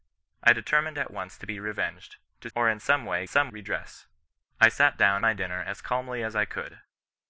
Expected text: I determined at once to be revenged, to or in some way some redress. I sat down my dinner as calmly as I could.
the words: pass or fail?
pass